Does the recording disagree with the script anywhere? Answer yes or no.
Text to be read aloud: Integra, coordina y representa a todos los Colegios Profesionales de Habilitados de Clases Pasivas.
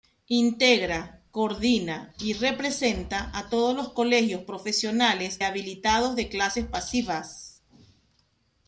yes